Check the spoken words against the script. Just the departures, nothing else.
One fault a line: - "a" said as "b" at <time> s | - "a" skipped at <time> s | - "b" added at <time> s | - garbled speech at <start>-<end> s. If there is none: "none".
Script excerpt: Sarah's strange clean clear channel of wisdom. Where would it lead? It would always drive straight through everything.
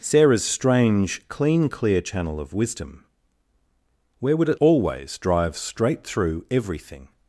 - "lead It would" skipped at 4.6 s